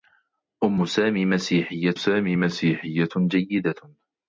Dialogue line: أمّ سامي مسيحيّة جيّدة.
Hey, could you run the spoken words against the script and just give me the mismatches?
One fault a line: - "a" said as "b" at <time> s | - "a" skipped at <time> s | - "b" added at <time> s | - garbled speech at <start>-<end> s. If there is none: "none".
- "سامي مسيحيّة" added at 1.9 s